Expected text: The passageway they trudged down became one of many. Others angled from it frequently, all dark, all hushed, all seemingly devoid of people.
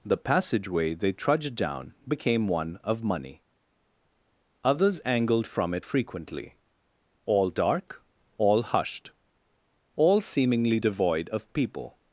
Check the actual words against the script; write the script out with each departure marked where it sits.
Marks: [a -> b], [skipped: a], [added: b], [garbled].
The passageway they trudged down became one of [many. -> money] Others angled from it frequently, all dark, all hushed, all seemingly devoid of people.